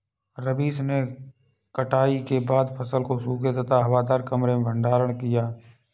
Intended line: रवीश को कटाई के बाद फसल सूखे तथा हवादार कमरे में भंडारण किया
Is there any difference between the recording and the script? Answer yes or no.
yes